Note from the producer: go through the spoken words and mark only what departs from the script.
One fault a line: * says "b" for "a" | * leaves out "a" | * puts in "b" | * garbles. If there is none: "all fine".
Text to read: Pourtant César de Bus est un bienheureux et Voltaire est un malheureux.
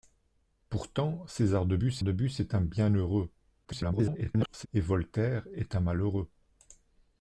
* puts in "de Bus"
* garbles